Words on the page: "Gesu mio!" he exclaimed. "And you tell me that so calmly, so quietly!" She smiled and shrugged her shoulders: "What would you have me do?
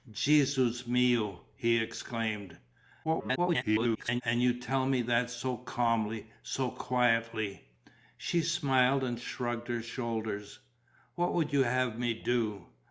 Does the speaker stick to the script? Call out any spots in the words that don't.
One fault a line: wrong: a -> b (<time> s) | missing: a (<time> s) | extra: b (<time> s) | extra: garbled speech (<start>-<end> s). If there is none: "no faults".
extra: garbled speech (3.0-4.2 s)